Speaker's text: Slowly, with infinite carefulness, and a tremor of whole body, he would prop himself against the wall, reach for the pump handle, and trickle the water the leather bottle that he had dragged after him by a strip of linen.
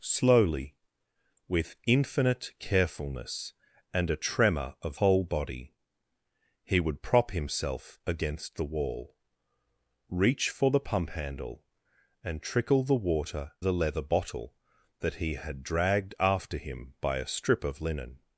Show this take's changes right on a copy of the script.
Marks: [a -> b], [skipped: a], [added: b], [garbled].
Slowly, with infinite carefulness, and a tremor of whole body, he would prop himself against the wall, reach for the pump handle, and trickle the water the leather bottle that he had dragged after him by a strip of linen.